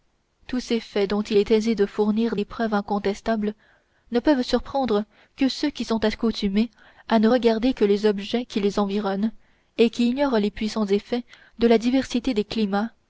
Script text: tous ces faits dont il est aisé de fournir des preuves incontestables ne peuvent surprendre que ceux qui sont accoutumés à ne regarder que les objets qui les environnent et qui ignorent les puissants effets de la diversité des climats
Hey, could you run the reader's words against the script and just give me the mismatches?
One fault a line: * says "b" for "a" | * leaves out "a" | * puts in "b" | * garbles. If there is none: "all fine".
all fine